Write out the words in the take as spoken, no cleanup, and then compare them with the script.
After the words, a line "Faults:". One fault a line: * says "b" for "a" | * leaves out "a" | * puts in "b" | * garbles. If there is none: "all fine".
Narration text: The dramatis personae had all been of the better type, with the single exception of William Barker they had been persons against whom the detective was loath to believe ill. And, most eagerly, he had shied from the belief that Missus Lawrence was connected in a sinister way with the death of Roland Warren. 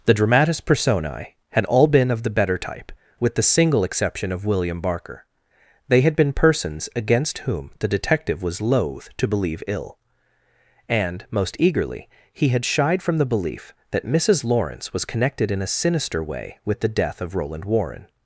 The dramatis personae had all been of the better type, with the single exception of William Barker they had been persons against whom the detective was loath to believe ill. And, most eagerly, he had shied from the belief that Missus Lawrence was connected in a sinister way with the death of Roland Warren.
Faults:
all fine